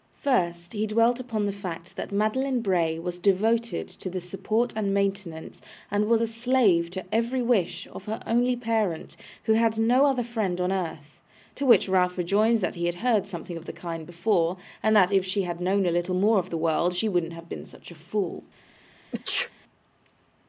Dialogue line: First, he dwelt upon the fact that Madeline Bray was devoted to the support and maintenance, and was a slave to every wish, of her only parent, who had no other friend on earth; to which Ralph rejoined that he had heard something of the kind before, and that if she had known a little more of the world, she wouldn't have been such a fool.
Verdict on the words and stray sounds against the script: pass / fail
fail